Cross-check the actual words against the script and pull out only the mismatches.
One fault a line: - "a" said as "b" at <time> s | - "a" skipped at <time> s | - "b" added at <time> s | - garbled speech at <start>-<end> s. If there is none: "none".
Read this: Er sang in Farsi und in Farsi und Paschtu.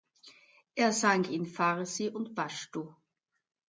- "in Farsi und" skipped at 2.3 s